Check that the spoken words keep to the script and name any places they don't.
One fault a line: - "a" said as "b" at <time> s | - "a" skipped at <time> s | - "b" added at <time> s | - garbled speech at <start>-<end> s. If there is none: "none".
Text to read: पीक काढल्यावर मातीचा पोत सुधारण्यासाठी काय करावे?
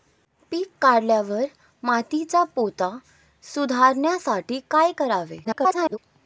- garbled speech at 5.4-6.0 s